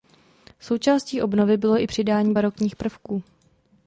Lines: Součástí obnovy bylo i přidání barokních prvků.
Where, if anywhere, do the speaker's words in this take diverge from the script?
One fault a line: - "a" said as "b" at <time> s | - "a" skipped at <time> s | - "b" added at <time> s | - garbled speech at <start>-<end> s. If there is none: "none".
none